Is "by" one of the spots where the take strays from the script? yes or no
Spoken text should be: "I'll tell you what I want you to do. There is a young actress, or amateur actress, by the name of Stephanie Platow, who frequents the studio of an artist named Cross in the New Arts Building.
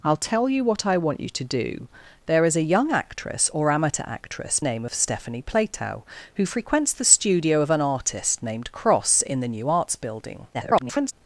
yes